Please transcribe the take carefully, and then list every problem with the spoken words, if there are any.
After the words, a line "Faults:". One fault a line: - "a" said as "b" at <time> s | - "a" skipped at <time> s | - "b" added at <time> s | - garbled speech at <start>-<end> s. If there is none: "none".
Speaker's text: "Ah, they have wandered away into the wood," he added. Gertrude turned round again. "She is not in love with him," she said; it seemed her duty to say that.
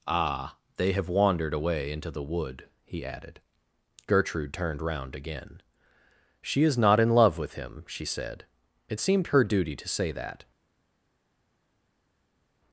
"Ah, they have wandered away into the wood," he added. Gertrude turned round again. "She is not in love with him," she said; it seemed her duty to say that.
Faults:
none